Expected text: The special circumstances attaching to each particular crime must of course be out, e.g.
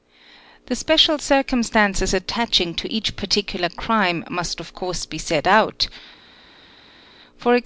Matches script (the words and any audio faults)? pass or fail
fail